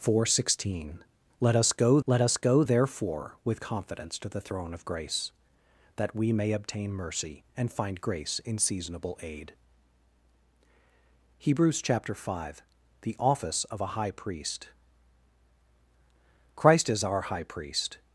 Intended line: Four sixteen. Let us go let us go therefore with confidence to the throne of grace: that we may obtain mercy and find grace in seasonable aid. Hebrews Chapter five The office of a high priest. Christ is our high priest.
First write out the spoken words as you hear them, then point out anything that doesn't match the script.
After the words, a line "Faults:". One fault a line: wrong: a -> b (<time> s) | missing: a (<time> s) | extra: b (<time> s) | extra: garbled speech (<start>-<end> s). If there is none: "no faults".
Four sixteen. Let us go let us go therefore with confidence to the throne of grace: that we may obtain mercy and find grace in seasonable aid. Hebrews Chapter five The office of a high priest. Christ is our high priest.
Faults:
no faults